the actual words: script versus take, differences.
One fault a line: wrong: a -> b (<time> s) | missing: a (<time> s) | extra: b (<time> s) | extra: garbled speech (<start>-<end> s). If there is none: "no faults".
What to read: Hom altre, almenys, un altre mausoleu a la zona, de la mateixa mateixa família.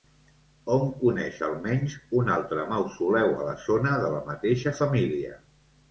wrong: altre -> coneix (1.0 s)
missing: mateixa (4.7 s)